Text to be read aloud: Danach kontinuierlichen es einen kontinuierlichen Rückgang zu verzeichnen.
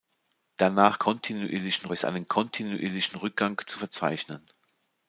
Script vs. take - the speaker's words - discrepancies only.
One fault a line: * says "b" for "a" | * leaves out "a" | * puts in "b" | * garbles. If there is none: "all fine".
all fine